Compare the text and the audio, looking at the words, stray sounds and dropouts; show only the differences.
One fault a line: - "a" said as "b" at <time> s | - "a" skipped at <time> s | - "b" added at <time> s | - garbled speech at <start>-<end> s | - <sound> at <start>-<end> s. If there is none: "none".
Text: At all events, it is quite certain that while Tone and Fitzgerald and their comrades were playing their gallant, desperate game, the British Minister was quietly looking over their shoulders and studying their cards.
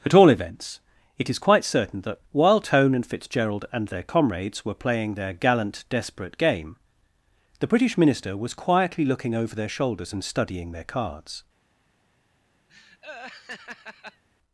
- laugh at 12.7-14.2 s